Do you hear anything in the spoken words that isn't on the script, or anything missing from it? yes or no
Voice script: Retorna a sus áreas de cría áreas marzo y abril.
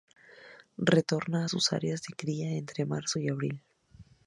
yes